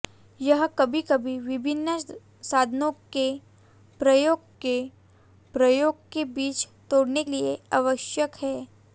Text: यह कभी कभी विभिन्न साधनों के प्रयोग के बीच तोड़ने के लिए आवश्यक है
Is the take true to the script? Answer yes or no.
no